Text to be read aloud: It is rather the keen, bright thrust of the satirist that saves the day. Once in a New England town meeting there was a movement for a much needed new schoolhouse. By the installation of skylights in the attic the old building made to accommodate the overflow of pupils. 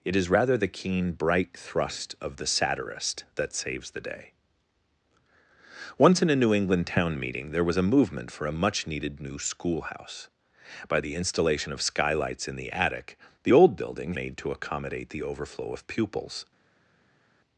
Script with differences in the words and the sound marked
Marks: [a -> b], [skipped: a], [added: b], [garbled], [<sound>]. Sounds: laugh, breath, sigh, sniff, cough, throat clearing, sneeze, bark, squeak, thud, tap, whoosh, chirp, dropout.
It is rather the keen, bright thrust of the satirist that saves the day. Once in a New England town meeting there was a movement for a much needed new schoolhouse. By the installation of skylights in the attic the old building made to accommodate the overflow of pupils.